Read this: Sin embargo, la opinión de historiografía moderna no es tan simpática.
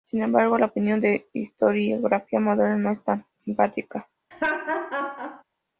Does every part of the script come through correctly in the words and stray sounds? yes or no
no